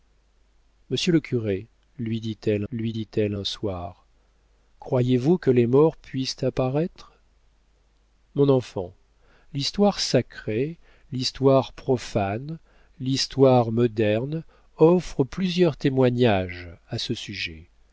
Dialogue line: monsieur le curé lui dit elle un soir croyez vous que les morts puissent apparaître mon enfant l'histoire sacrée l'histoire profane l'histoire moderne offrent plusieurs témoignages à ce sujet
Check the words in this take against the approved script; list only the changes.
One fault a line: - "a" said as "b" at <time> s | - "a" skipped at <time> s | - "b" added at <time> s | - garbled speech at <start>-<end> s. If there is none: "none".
- "lui dit elle" added at 2.7 s